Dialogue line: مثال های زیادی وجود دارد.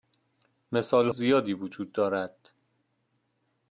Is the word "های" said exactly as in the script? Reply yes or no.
no